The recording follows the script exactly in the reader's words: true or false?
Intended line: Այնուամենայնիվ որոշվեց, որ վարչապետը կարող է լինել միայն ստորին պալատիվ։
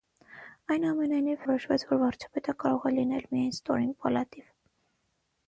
true